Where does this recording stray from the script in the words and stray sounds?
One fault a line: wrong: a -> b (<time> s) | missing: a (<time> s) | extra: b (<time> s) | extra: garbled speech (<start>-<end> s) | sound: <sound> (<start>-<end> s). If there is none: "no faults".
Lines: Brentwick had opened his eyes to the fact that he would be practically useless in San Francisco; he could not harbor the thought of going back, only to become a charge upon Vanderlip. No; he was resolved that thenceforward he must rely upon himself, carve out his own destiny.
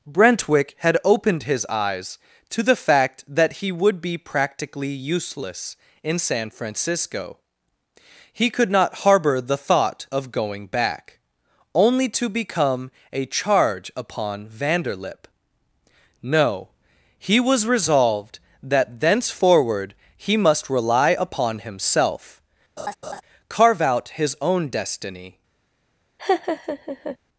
sound: laugh (22.8-23.2 s)
sound: laugh (26.2-27.2 s)